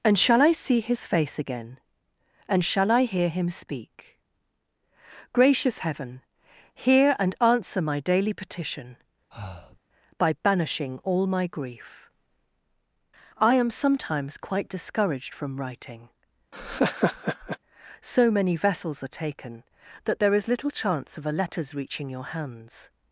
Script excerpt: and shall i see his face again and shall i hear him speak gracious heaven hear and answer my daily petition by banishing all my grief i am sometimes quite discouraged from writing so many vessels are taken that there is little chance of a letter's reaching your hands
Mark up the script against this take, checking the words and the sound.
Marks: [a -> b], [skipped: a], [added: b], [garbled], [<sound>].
and shall i see his face again and shall i hear him speak gracious heaven hear and answer my daily petition [breath] by banishing all my grief i am sometimes quite discouraged from writing [laugh] so many vessels are taken that there is little chance of a letter's reaching your hands